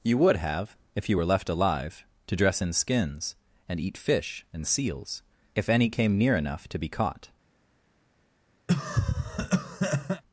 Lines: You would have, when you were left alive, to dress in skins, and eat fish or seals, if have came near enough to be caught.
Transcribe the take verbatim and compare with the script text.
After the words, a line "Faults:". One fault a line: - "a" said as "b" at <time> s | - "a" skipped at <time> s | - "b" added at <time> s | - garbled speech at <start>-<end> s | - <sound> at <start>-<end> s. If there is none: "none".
You would have, if you were left alive, to dress in skins, and eat fish and seals, if any came near enough to be caught.
Faults:
- "when" said as "if" at 0.9 s
- "or" said as "and" at 4.5 s
- "have" said as "any" at 5.7 s
- cough at 8.7-10.2 s